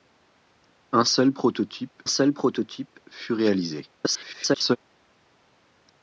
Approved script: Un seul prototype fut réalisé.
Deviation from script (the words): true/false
true